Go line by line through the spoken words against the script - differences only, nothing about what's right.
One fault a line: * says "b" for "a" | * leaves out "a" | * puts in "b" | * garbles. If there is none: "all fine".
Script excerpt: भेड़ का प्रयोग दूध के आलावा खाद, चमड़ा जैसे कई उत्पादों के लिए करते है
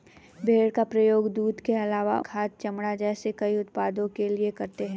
all fine